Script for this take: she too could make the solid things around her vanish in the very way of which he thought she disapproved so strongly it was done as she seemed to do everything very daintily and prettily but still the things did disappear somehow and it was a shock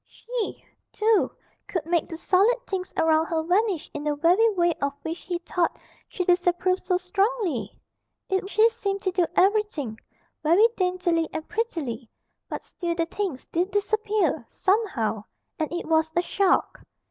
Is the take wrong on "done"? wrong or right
wrong